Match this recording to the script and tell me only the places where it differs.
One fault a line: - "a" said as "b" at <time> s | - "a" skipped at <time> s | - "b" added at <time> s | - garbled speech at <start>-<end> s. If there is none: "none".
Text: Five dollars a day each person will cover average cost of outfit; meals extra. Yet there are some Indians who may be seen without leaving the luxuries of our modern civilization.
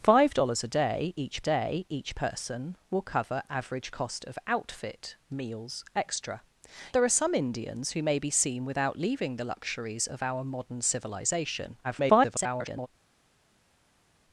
- "day each" added at 1.4 s
- "Yet" skipped at 6.4 s
- garbled speech at 11.8-12.9 s